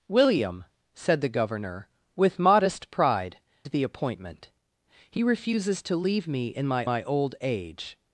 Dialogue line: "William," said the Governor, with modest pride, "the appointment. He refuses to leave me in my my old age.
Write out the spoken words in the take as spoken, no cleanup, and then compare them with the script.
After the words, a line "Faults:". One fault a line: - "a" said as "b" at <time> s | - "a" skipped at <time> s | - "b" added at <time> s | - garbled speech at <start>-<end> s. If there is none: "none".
"William," said the Governor, with modest pride, "the appointment. He refuses to leave me in my my old age.
Faults:
none